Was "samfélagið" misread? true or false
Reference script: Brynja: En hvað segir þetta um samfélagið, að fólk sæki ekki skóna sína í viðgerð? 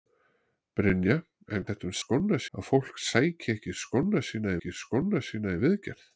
true